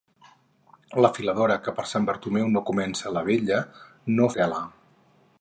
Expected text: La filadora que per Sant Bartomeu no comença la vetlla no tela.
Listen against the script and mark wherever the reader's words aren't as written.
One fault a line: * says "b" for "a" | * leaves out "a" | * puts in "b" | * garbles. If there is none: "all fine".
all fine